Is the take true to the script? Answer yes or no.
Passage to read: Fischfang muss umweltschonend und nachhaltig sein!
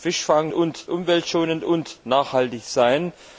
no